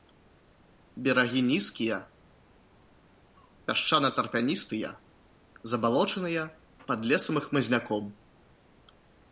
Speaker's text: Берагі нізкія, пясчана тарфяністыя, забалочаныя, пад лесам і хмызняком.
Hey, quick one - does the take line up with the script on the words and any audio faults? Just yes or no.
yes